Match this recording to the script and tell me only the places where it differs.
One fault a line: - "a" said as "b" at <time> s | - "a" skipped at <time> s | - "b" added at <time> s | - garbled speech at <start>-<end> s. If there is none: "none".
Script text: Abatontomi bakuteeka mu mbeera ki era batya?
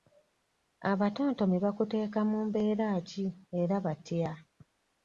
none